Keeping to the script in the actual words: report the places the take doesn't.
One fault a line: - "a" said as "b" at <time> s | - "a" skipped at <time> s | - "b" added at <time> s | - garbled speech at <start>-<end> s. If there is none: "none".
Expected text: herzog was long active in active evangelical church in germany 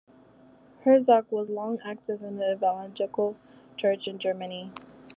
- "active" said as "the" at 2.4 s